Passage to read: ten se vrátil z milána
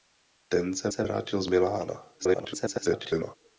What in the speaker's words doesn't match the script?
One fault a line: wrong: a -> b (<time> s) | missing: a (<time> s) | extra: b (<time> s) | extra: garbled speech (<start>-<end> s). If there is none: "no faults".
extra: se (0.9 s)
extra: garbled speech (2.2-3.4 s)